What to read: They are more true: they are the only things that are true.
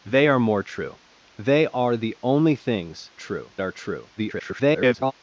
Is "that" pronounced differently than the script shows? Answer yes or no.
yes